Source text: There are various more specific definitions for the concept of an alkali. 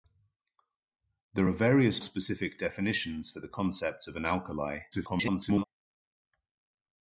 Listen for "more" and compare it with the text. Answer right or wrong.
wrong